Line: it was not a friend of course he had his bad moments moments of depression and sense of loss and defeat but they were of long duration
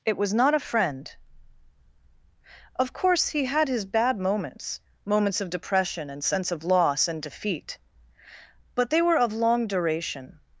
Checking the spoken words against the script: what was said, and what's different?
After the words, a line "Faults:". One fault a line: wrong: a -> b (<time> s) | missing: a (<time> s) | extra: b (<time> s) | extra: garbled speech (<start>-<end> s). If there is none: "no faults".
it was not a friend of course he had his bad moments moments of depression and sense of loss and defeat but they were of long duration
Faults:
no faults